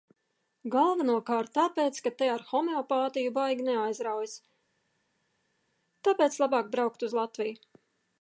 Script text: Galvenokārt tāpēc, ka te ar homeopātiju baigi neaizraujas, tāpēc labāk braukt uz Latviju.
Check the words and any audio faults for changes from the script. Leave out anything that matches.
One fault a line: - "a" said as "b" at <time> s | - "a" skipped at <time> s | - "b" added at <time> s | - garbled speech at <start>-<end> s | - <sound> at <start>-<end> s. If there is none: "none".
none